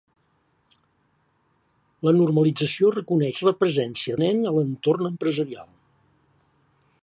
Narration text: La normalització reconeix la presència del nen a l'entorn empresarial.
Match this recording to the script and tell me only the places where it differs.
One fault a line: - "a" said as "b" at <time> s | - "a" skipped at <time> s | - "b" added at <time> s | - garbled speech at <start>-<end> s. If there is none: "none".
- "del" skipped at 4.2 s